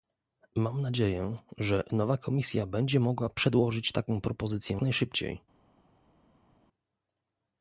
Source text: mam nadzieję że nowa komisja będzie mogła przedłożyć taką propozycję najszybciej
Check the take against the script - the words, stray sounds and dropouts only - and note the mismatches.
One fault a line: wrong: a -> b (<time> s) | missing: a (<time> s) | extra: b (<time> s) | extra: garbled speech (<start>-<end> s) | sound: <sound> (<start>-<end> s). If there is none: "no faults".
no faults